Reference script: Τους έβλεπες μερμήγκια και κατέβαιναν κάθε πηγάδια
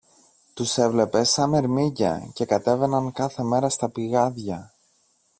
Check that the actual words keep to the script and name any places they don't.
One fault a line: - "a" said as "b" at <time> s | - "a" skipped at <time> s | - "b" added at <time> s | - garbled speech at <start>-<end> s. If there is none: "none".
- "σα" added at 1.3 s
- "μέρα στα" added at 3.4 s